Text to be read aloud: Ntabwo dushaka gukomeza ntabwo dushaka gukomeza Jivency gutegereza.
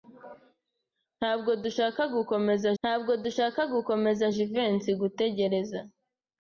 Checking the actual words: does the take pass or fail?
pass